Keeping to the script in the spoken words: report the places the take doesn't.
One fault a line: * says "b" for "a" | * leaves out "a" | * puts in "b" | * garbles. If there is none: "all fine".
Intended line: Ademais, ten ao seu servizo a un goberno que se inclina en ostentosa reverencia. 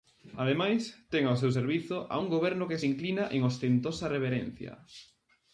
all fine